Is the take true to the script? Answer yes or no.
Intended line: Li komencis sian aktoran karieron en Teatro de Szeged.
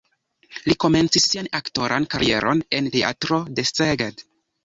yes